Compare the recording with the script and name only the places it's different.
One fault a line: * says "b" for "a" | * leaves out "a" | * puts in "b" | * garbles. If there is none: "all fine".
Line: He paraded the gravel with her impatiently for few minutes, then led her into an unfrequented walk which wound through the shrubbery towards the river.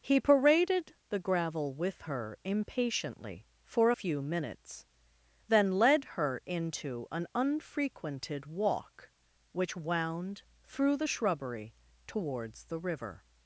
all fine